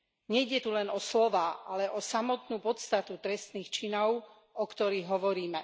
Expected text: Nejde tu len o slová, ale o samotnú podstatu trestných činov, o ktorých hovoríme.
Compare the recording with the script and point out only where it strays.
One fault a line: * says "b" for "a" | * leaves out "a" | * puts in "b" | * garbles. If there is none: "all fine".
all fine